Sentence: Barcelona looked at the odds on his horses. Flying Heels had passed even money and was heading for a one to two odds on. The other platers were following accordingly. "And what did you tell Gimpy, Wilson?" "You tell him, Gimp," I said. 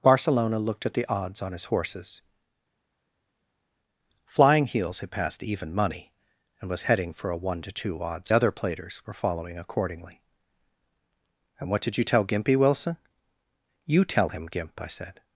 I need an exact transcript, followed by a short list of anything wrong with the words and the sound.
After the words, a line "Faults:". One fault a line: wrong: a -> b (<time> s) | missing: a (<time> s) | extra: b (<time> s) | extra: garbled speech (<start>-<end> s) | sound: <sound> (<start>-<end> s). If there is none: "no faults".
Barcelona looked at the odds on his horses. Flying Heels had passed even money and was heading for a one to two odds other platers were following accordingly. "And what did you tell Gimpy, Wilson?" "You tell him, Gimp," I said.
Faults:
missing: on The (8.3 s)